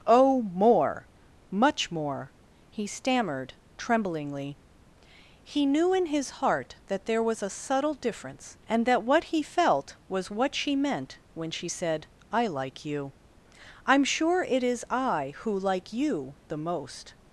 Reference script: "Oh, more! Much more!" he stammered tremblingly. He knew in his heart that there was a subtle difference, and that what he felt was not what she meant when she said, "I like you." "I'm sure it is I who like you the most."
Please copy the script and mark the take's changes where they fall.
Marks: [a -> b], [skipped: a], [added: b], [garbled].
"Oh, more! Much more!" he stammered tremblingly. He knew in his heart that there was a subtle difference, and that what he felt was [skipped: not] what she meant when she said, "I like you." "I'm sure it is I who like you the most."